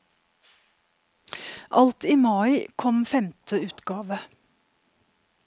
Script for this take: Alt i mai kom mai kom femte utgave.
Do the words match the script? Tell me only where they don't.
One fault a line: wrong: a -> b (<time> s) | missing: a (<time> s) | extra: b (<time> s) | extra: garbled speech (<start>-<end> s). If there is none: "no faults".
missing: mai kom (3.0 s)